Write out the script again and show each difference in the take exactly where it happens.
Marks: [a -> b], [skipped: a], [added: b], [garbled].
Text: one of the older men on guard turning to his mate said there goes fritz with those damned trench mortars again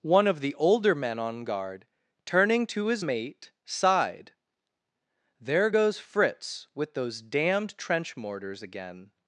one of the older men on guard turning to his mate [said -> sighed] there goes fritz with those damned trench mortars again